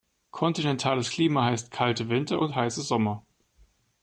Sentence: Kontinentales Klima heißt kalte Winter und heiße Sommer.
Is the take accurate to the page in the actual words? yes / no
yes